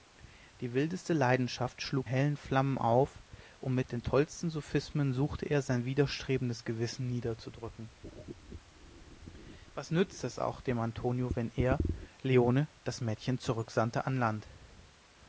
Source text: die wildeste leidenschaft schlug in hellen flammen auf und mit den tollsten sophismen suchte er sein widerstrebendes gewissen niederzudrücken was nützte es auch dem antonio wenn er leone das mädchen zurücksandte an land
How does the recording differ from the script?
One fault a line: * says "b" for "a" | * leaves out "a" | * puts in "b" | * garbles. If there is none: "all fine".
* leaves out "in"